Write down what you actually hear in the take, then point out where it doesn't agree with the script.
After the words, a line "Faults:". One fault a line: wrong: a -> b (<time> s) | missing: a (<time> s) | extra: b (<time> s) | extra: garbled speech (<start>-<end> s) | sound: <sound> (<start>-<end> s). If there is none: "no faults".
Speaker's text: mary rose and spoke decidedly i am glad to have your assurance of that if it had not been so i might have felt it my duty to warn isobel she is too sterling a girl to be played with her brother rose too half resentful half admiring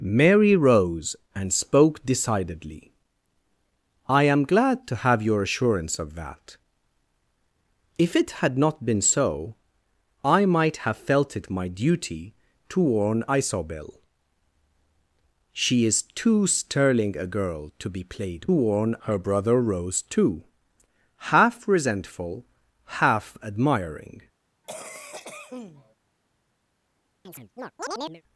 mary rose and spoke decidedly i am glad to have your assurance of that if it had not been so i might have felt it my duty to warn isobel she is too sterling a girl to be played warn her brother rose too half resentful half admiring
Faults:
wrong: with -> warn (18.5 s)
sound: cough (24.6-26.0 s)
sound: chirp (27.2-28.2 s)